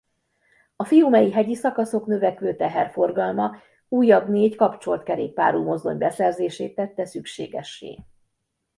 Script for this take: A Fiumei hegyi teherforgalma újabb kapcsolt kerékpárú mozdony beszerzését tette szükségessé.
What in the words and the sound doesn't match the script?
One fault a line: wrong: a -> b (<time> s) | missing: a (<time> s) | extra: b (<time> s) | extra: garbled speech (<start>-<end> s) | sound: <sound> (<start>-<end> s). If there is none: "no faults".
extra: szakaszok növekvő (1.5 s)
extra: négy (4.3 s)